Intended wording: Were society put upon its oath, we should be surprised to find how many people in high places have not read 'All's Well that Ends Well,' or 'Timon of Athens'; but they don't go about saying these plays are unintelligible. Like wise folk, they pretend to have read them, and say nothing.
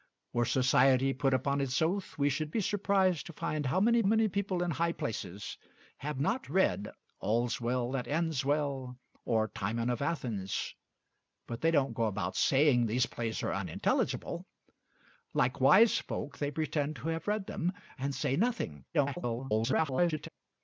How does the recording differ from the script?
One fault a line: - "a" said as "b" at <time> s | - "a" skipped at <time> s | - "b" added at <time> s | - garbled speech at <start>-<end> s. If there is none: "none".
- "many" added at 4.0 s
- garbled speech at 18.9-20.3 s